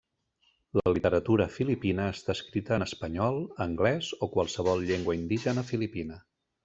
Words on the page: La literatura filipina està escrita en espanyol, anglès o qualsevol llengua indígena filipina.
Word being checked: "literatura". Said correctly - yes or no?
yes